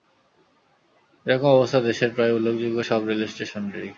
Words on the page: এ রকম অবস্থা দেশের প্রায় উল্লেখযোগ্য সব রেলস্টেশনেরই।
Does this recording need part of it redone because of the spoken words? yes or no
no